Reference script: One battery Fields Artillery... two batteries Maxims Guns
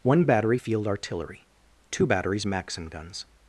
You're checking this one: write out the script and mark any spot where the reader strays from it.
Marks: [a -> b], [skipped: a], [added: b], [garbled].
One battery [Fields -> Field] Artillery... two batteries [Maxims -> Maxim] Guns